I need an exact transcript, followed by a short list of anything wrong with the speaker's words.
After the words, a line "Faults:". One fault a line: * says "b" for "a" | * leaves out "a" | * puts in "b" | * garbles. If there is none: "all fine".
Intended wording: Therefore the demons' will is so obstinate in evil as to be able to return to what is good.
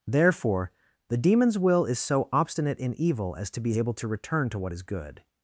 Therefore the demons' will is so obstinate in evil as to be able to return to what is good.
Faults:
all fine